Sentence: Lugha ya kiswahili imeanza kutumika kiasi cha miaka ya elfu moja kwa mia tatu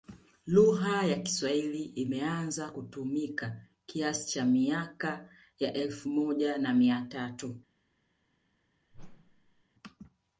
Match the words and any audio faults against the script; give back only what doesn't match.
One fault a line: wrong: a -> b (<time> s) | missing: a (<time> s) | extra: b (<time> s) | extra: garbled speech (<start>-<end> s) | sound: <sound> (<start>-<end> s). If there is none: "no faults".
wrong: kwa -> na (6.6 s)
sound: whoosh (8.9-9.6 s)